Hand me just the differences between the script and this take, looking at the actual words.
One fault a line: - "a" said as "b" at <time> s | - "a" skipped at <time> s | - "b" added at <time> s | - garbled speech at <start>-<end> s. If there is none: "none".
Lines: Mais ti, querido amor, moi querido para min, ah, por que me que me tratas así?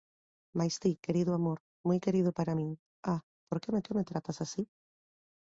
none